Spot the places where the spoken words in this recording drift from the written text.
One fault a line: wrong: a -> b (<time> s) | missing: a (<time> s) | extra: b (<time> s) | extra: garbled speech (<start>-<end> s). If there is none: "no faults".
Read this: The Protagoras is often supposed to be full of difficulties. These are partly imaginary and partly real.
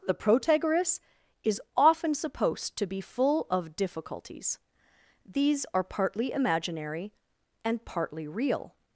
no faults